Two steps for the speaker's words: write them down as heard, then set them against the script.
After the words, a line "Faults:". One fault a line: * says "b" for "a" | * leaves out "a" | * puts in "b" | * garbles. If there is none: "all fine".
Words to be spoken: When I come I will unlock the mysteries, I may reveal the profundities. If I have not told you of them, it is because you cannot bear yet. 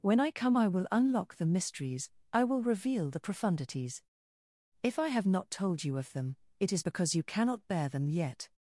When I come I will unlock the mysteries, I will reveal the profundities. If I have not told you of them, it is because you cannot bear them yet.
Faults:
* says "will" for "may"
* puts in "them"